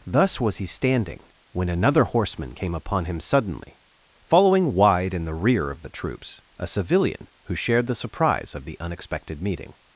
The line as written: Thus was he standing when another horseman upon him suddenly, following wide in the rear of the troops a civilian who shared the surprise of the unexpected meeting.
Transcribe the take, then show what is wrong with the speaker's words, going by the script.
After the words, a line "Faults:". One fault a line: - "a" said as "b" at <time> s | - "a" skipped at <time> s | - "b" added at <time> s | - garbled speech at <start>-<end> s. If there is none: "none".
Thus was he standing when another horseman came upon him suddenly, following wide in the rear of the troops a civilian who shared the surprise of the unexpected meeting.
Faults:
- "came" added at 2.5 s